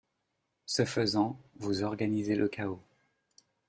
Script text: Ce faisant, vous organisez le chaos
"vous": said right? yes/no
yes